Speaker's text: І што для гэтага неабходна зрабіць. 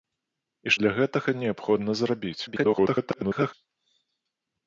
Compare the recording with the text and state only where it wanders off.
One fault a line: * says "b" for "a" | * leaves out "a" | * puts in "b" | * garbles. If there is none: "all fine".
* leaves out "што"
* garbles